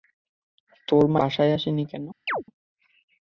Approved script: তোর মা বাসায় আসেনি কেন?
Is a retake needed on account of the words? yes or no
no